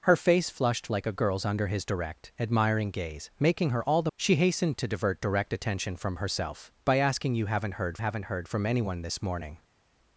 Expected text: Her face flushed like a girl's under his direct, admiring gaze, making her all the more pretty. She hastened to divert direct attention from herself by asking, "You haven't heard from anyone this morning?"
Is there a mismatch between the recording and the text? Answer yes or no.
yes